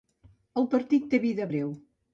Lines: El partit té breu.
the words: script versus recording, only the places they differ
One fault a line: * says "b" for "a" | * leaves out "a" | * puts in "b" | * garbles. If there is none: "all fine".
* puts in "vida"